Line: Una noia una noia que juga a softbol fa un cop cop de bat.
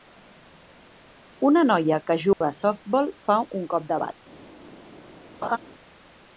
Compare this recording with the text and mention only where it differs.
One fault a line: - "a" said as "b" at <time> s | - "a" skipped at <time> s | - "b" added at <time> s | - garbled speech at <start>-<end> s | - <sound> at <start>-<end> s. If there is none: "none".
- "una noia" skipped at 2.0 s
- dropout at 2.3-2.4 s
- "cop" skipped at 3.9 s
- laugh at 5.4-5.6 s